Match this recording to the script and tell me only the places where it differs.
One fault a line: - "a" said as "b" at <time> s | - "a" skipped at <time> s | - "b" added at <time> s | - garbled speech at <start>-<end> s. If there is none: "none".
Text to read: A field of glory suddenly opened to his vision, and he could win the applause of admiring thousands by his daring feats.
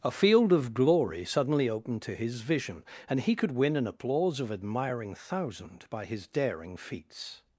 - "the" said as "an" at 3.8 s
- "thousands" said as "thousand" at 5.1 s